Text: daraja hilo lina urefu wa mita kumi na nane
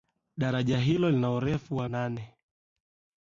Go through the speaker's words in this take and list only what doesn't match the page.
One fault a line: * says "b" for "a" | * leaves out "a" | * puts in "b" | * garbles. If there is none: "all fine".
* leaves out "mita kumi na"